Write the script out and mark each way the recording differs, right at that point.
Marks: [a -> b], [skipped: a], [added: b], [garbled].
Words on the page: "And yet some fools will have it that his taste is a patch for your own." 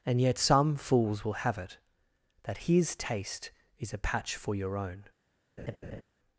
"And yet some fools will have it that his taste is a patch for your own."